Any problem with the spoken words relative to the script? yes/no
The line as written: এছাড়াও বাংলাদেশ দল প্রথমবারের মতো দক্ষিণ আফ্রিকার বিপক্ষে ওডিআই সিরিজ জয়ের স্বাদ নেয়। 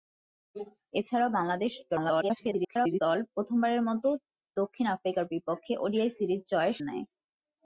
yes